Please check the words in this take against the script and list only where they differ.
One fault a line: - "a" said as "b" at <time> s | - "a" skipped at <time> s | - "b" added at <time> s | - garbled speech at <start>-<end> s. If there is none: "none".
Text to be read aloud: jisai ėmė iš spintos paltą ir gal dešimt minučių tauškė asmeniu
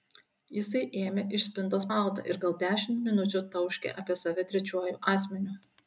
- "apie save trečiuoju" added at 4.0 s